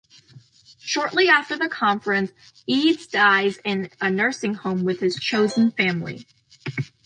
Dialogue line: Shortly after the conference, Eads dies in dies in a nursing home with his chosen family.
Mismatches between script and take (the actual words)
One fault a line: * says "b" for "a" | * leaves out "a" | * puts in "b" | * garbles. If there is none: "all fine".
* leaves out "dies in"